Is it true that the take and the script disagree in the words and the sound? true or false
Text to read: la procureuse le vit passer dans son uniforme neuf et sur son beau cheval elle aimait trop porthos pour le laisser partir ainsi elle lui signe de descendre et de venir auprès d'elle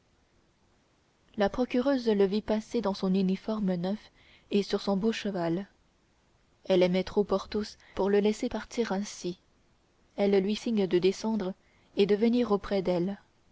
false